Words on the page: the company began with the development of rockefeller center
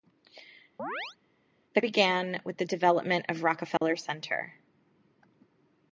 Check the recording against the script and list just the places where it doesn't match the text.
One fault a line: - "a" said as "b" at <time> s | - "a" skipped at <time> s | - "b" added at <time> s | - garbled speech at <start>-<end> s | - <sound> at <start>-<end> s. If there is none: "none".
- chirp at 0.8-1.2 s
- "company" skipped at 1.8 s
- dropout at 3.8-3.8 s